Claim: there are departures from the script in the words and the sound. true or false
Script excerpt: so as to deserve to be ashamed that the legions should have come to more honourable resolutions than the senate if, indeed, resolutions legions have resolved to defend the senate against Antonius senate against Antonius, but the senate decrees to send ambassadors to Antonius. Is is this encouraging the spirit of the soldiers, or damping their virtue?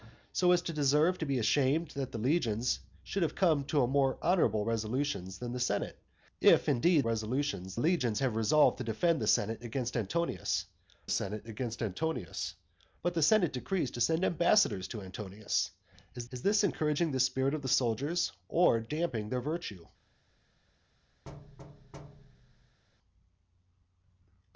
true